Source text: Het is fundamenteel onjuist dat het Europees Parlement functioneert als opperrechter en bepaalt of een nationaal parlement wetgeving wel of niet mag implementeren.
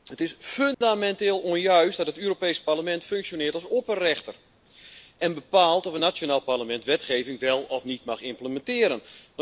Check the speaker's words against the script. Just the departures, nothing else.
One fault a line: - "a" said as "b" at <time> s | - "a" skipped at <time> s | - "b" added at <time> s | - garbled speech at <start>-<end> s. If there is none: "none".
none